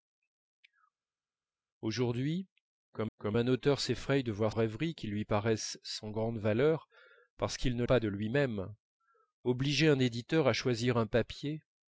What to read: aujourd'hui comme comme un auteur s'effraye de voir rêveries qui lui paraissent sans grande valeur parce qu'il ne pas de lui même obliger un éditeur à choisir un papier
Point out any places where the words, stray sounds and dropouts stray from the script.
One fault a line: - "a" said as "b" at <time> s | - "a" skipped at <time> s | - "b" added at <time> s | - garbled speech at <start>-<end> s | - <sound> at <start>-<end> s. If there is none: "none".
none